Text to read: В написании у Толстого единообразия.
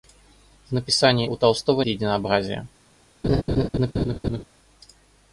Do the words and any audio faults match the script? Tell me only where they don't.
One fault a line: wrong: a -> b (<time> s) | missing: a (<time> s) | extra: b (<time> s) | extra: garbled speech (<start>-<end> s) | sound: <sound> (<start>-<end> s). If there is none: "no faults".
sound: laugh (3.2-4.4 s)